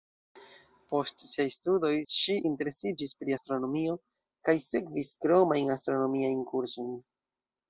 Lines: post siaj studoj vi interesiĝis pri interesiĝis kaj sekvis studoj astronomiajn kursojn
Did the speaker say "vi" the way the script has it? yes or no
no